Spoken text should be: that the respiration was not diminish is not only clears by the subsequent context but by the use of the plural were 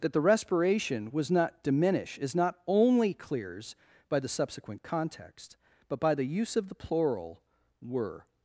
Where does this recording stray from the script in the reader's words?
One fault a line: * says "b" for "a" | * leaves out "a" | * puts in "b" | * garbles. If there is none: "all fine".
all fine